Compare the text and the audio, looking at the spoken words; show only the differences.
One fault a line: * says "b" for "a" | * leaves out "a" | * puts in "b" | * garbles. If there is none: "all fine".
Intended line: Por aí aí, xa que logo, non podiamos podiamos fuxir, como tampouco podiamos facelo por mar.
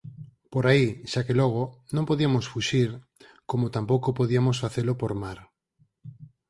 * leaves out "aí"
* leaves out "podiamos"